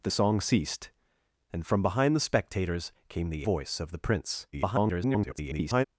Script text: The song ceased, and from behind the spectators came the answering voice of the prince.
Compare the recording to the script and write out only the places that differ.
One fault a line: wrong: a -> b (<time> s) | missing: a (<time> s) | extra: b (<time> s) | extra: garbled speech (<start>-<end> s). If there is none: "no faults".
missing: answering (3.5 s)
extra: garbled speech (4.5-5.9 s)